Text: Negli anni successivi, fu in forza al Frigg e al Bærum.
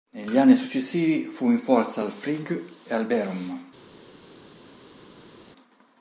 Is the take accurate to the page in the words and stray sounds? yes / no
yes